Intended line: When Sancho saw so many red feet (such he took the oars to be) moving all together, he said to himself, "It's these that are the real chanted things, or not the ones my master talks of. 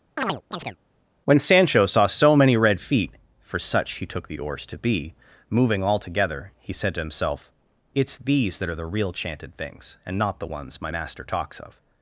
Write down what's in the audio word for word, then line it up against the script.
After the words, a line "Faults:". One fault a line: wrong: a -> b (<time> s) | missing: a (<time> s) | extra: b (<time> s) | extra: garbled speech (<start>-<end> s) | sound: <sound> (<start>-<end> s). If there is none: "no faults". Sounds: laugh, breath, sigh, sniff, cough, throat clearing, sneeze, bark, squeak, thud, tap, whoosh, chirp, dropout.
When Sancho saw so many red feet (for such he took the oars to be) moving all together, he said to himself, "It's these that are the real chanted things, and not the ones my master talks of.
Faults:
sound: chirp (0.2-0.8 s)
extra: for (3.4 s)
wrong: or -> and (10.0 s)